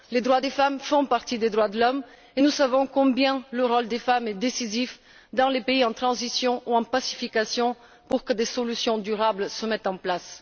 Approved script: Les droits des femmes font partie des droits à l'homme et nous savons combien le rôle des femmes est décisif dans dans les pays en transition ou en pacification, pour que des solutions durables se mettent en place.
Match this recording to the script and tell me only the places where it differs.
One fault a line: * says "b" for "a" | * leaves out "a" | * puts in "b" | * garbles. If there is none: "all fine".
* says "de" for "à"
* leaves out "dans"